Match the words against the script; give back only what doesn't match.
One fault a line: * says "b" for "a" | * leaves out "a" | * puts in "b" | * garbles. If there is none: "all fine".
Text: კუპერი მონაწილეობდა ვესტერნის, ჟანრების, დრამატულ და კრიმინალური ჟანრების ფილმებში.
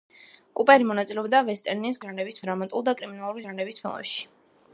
all fine